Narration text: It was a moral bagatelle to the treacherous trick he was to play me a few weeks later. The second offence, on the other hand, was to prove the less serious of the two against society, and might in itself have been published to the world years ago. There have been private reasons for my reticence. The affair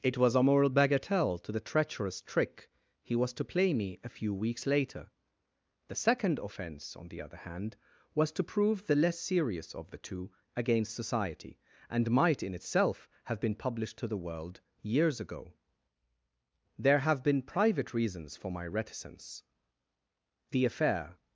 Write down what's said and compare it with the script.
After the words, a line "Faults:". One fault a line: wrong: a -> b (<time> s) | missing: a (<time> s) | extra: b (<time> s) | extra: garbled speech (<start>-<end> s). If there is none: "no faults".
It was a moral bagatelle to the treacherous trick he was to play me a few weeks later. The second offence, on the other hand, was to prove the less serious of the two against society, and might in itself have been published to the world years ago. There have been private reasons for my reticence. The affair
Faults:
no faults